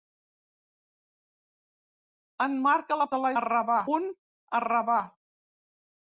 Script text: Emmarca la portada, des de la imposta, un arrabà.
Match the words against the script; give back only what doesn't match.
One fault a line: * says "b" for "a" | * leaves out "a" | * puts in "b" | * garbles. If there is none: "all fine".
* leaves out "portada des"
* says "arrabà" for "imposta"